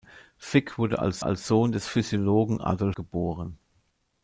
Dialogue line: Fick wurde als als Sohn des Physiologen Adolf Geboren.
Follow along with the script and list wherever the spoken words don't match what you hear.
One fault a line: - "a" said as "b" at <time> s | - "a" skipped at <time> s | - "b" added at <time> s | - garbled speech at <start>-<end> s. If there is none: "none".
none